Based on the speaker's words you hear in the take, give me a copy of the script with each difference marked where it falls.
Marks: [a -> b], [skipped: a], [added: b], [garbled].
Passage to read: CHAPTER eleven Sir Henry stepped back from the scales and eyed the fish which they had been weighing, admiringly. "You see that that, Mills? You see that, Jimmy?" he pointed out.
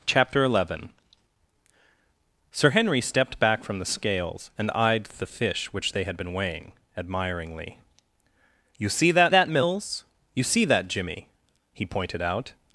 CHAPTER eleven Sir Henry stepped back from the scales and eyed the fish which they had been weighing, admiringly. "You see that that, Mills? You see that, Jimmy?" he pointed out.